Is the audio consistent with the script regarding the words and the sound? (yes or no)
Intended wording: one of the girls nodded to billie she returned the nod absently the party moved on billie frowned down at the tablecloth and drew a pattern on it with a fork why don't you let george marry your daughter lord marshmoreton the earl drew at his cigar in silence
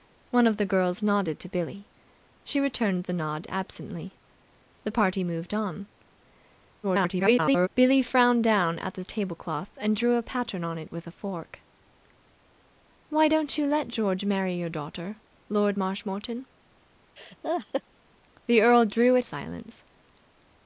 no